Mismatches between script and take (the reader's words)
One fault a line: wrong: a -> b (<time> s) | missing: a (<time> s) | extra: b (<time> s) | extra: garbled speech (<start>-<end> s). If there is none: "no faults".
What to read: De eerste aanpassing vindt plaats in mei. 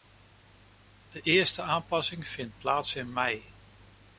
no faults